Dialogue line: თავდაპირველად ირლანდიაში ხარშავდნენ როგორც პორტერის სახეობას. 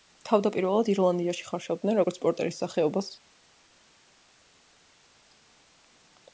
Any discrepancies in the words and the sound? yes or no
no